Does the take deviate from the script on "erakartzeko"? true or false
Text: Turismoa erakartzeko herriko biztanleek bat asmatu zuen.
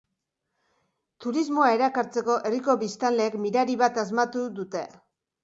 false